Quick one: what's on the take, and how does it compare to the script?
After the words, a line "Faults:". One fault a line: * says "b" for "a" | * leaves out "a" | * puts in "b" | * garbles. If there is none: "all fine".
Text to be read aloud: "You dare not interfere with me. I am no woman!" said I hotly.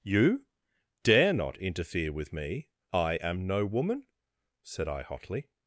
"You dare not interfere with me. I am no woman!" said I hotly.
Faults:
all fine